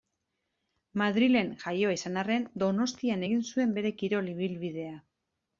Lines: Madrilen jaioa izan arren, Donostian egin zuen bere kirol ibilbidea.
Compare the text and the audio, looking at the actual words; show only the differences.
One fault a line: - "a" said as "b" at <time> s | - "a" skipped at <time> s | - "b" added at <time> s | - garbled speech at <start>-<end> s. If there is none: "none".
none